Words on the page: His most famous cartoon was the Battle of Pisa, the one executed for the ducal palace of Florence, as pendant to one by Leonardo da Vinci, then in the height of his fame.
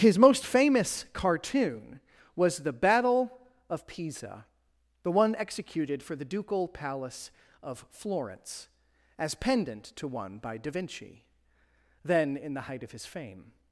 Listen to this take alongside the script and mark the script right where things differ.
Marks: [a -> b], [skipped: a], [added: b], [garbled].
His most famous cartoon was the Battle of Pisa, the one executed for the ducal palace of Florence, as pendant to one by [skipped: Leonardo] da Vinci, then in the height of his fame.